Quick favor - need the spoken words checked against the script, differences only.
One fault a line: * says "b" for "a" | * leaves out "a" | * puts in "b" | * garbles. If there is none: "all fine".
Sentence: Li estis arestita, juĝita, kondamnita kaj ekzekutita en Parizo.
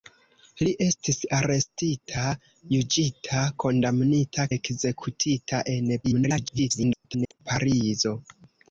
* leaves out "kaj"
* garbles